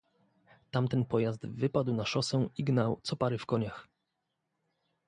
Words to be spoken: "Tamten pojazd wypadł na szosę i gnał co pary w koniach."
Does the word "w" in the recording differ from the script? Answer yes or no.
no